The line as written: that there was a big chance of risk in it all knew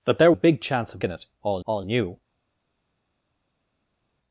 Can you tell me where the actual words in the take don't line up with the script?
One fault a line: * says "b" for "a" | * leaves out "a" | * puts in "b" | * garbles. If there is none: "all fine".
* leaves out "was"
* leaves out "risk"
* puts in "all"